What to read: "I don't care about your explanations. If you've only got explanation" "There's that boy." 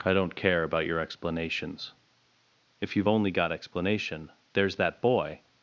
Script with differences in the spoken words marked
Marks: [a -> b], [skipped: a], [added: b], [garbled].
"I don't care about your explanations. If you've only got explanation" "There's that boy."